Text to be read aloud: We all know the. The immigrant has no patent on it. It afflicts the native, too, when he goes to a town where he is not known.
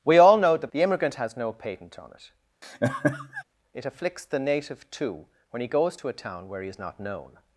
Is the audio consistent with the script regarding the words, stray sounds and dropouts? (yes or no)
no